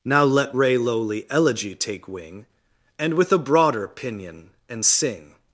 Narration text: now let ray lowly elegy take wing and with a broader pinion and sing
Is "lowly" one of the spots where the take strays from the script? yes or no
no